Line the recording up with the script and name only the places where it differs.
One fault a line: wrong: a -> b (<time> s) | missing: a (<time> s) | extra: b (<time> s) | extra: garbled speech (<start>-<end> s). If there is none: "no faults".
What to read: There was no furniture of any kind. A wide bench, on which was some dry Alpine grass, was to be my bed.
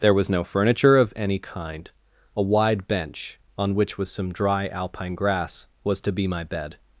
no faults